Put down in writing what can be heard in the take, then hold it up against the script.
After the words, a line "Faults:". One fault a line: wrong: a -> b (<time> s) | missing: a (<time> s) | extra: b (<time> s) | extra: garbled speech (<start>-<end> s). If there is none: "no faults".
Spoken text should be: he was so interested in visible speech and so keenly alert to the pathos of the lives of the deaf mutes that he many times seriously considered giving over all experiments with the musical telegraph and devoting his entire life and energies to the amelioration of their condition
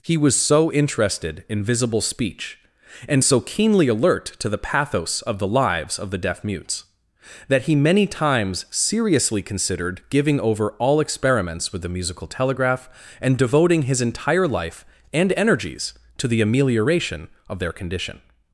he was so interested in visible speech and so keenly alert to the pathos of the lives of the deaf mutes that he many times seriously considered giving over all experiments with the musical telegraph and devoting his entire life and energies to the amelioration of their condition
Faults:
no faults